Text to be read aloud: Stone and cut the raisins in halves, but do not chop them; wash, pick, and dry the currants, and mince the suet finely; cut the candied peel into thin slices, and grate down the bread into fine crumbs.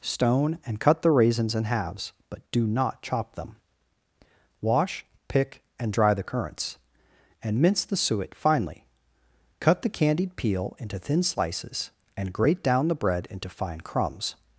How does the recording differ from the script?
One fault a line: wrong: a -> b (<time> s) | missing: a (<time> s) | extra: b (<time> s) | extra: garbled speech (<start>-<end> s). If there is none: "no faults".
no faults